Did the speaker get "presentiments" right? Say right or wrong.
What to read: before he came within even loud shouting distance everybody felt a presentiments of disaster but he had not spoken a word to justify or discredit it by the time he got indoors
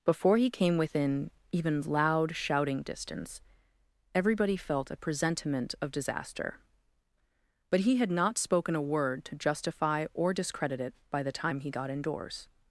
wrong